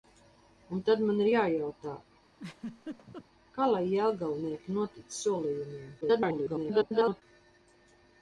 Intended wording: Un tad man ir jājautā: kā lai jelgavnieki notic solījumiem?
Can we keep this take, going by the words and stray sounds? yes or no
no